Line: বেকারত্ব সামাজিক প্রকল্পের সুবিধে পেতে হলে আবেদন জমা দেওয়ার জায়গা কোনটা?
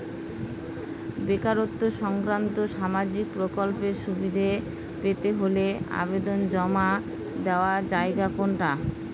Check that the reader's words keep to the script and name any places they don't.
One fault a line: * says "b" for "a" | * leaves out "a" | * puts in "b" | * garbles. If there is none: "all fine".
* puts in "সংক্রান্ত"